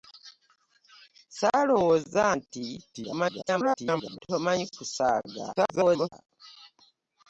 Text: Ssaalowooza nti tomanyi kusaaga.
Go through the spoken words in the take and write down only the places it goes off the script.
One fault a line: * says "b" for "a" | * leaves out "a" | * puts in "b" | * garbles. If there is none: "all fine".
* garbles
* garbles